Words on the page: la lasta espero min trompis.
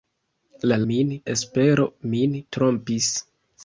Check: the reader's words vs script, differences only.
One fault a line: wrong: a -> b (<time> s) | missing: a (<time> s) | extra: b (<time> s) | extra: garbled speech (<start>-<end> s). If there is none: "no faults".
wrong: lasta -> min (0.9 s)